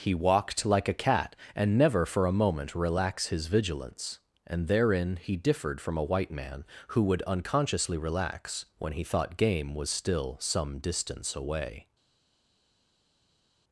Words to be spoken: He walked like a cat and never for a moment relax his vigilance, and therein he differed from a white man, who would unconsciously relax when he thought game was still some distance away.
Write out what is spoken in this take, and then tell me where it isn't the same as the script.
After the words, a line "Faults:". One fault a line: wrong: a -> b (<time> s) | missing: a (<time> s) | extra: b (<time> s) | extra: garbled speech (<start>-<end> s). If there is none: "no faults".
He walked like a cat and never for a moment relax his vigilance, and therein he differed from a white man, who would unconsciously relax when he thought game was still some distance away.
Faults:
no faults